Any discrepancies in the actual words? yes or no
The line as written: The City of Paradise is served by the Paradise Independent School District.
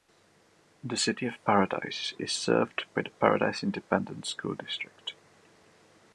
no